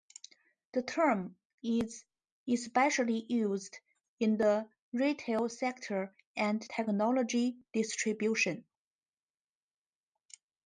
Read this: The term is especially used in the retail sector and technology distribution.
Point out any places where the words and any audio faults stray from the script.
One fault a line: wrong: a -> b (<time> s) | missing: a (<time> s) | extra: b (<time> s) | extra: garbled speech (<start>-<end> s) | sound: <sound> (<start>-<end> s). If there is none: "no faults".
no faults